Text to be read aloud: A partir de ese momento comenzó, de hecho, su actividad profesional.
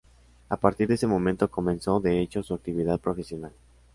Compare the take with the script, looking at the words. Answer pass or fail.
pass